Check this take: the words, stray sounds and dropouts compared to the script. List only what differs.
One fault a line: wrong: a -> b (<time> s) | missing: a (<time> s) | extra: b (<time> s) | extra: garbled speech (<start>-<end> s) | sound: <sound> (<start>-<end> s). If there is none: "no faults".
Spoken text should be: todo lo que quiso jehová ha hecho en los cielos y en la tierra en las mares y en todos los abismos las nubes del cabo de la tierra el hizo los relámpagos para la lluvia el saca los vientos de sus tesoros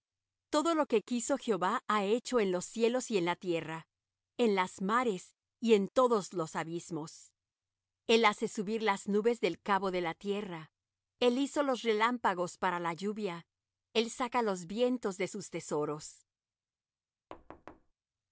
extra: el hace subir (8.1 s)
sound: thud (17.3-17.9 s)